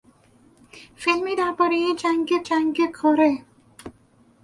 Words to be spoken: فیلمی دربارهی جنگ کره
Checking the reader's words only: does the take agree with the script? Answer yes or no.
no